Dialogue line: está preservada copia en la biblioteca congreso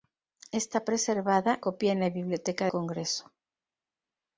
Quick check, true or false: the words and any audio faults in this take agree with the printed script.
true